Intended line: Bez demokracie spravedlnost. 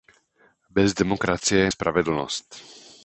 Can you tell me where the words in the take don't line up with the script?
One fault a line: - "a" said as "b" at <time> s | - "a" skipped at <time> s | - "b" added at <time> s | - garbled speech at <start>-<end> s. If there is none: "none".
none